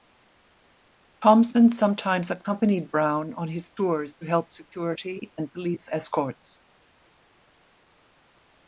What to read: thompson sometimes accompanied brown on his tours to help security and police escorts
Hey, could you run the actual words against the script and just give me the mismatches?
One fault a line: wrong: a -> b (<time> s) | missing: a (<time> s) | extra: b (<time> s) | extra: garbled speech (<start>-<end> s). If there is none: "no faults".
no faults